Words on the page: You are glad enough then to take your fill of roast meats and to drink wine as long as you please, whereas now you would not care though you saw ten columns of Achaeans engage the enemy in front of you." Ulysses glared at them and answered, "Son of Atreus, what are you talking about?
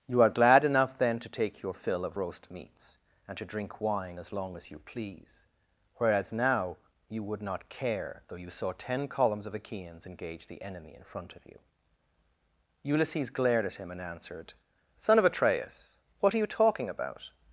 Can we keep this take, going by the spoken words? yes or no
no